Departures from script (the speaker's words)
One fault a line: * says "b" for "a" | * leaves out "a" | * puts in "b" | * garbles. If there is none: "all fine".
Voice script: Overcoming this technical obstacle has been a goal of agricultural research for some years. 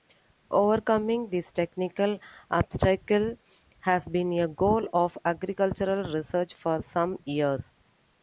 all fine